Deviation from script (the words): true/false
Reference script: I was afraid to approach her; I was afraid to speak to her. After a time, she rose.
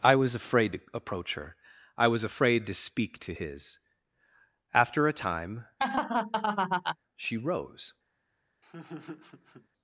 true